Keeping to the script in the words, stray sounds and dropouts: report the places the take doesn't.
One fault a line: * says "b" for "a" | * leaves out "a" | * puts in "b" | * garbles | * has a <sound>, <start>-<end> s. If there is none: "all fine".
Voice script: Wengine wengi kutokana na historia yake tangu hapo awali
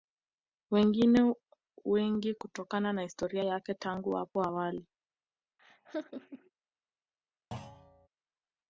* has a laugh, 5.6-6.5 s
* has a thud, 7.5-8.1 s